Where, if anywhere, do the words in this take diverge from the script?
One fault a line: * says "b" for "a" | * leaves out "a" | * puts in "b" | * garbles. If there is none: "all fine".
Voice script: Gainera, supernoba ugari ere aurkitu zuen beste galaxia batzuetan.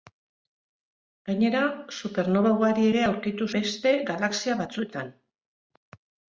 * leaves out "zuen"